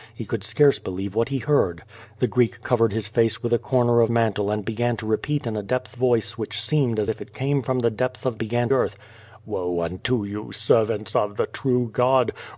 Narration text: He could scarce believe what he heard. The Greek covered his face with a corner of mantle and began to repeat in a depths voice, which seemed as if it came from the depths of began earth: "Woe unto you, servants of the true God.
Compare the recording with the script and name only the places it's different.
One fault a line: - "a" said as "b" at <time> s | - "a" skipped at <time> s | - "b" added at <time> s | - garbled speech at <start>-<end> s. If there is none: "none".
none